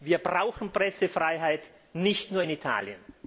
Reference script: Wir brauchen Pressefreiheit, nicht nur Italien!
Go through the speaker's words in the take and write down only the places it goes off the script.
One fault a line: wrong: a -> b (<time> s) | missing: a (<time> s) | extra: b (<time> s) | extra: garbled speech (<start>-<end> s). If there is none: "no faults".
extra: in (2.4 s)